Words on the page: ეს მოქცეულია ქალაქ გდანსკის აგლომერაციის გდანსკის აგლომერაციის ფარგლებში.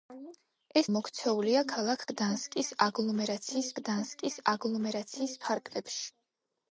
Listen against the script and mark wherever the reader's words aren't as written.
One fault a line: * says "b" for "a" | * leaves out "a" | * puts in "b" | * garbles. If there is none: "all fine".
all fine